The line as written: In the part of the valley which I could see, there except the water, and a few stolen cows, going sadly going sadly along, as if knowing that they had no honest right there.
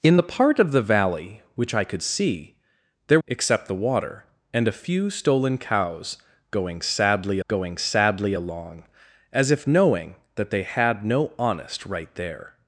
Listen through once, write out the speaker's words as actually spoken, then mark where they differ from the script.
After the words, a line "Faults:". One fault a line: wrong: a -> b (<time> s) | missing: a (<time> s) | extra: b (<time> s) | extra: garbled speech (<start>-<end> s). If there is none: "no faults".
In the part of the valley which I could see, there except the water, and a few stolen cows, going sadly going sadly along, as if knowing that they had no honest right there.
Faults:
no faults